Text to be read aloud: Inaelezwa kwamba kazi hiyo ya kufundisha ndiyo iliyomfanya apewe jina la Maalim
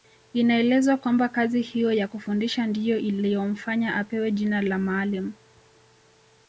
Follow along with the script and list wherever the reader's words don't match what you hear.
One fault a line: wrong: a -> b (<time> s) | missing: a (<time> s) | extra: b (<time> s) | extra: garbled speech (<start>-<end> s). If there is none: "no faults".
no faults